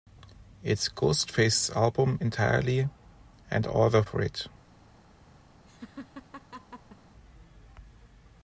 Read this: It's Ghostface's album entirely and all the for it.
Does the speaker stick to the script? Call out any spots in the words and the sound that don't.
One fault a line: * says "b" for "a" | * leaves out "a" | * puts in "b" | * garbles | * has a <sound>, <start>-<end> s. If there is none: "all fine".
* has a laugh, 5.7-7.0 s